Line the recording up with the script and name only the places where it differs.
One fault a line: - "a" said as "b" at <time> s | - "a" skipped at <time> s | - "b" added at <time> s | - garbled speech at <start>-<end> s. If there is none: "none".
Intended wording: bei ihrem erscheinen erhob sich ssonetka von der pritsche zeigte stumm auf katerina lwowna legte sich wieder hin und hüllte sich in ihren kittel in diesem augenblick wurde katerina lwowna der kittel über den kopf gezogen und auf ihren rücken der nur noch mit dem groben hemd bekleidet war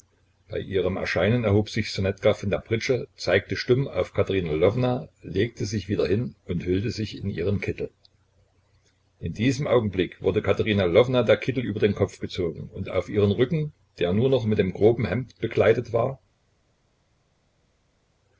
none